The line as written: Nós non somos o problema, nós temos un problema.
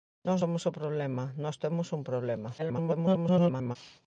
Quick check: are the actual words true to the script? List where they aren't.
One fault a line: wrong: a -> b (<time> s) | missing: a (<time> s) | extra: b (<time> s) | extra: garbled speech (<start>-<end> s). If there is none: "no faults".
missing: non (0.4 s)
extra: garbled speech (2.6-3.8 s)